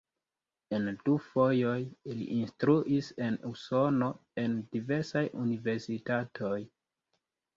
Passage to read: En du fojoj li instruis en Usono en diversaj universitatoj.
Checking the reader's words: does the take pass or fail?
pass